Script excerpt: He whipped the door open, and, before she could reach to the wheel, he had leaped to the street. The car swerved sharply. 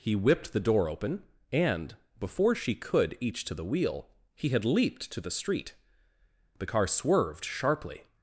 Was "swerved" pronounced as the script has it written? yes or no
yes